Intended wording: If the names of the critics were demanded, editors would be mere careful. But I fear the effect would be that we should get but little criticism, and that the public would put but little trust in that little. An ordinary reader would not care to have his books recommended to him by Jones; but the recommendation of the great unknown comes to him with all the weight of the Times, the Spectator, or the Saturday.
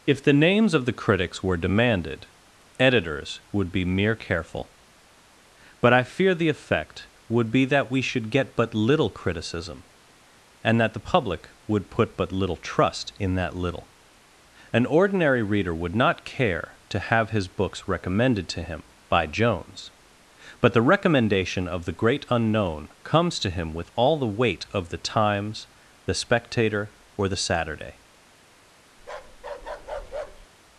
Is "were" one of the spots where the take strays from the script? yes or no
no